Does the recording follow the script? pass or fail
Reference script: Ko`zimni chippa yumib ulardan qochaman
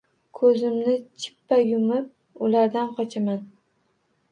pass